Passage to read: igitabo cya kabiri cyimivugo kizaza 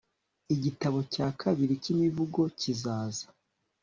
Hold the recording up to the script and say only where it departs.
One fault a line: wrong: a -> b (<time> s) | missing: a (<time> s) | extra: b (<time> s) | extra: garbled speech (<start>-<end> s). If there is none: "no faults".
no faults